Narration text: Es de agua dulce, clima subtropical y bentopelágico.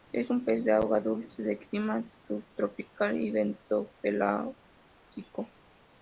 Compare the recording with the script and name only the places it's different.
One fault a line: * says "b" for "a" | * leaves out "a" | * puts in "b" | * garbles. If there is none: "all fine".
* puts in "un pez"
* puts in "de"